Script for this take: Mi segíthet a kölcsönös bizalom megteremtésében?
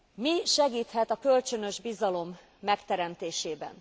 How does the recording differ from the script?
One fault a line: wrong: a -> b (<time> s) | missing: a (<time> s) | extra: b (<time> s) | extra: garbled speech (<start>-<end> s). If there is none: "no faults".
no faults